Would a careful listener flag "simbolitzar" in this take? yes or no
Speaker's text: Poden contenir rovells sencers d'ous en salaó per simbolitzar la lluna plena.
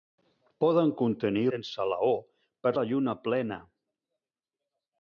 yes